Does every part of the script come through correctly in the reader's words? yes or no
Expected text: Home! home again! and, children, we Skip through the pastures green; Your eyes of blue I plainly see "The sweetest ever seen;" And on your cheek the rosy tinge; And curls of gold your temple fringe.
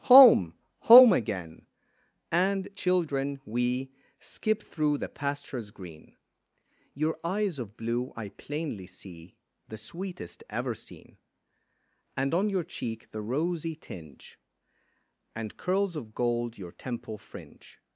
yes